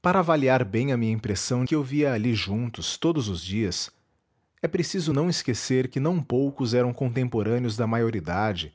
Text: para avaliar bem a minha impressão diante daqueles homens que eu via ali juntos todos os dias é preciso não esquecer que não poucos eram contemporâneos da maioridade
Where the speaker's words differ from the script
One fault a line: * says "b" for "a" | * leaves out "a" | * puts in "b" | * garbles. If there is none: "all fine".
* leaves out "diante daqueles homens"